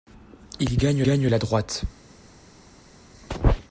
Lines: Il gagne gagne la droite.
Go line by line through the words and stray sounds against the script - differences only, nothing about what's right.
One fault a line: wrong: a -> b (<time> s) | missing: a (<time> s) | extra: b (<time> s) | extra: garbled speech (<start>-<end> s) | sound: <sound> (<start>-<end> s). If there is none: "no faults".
no faults